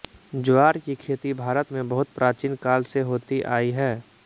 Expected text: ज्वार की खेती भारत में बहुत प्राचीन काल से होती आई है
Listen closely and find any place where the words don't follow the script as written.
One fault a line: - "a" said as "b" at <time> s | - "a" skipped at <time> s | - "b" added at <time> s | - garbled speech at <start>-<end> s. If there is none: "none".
none